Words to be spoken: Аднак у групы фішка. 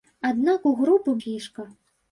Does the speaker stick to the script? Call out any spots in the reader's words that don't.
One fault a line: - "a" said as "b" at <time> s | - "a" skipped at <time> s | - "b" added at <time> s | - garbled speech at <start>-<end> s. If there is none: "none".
none